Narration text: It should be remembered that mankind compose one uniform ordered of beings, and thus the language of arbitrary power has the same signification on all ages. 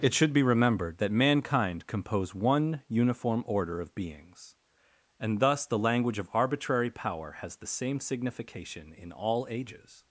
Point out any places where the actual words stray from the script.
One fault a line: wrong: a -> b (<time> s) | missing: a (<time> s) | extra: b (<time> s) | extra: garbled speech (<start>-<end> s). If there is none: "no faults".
wrong: ordered -> order (3.5 s)
wrong: on -> in (8.9 s)